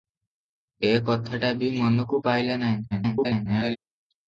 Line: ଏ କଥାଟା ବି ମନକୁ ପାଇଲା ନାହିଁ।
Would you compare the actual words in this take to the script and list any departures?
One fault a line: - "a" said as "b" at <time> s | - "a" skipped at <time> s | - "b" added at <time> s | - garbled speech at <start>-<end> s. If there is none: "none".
- garbled speech at 2.9-3.8 s